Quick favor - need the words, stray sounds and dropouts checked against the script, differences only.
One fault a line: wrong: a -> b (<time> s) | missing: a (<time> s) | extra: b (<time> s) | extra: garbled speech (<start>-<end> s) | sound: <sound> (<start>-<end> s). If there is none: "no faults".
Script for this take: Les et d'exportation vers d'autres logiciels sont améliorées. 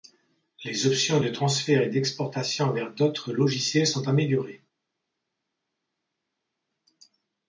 extra: options de transfert (0.9 s)